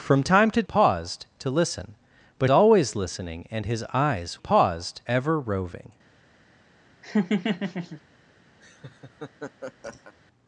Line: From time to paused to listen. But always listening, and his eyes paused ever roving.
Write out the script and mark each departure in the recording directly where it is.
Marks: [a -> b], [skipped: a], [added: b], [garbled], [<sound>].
From time to paused to listen. But always listening, and his eyes paused ever roving. [laugh] [laugh]